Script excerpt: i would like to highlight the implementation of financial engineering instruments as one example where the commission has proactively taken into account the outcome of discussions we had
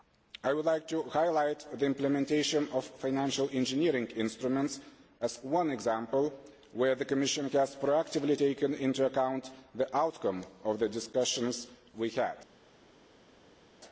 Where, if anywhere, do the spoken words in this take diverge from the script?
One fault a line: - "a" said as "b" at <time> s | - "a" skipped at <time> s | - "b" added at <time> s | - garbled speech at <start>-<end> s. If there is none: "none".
- "the" added at 10.8 s